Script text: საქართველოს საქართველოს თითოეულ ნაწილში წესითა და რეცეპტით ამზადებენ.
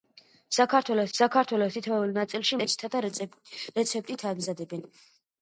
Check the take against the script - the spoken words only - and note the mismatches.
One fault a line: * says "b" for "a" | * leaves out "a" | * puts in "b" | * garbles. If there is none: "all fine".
all fine